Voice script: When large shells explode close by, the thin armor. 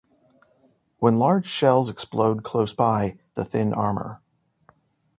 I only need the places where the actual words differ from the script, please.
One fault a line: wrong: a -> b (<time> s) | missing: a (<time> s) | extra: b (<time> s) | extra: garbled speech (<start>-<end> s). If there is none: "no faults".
no faults